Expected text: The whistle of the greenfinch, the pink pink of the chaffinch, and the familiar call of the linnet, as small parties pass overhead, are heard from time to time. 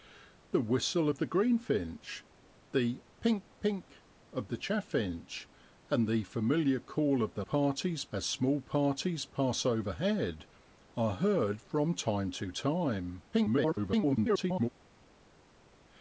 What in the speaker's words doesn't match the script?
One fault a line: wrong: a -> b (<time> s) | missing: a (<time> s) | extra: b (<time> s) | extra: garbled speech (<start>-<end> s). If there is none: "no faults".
wrong: linnet -> parties (7.4 s)
extra: garbled speech (13.3-14.7 s)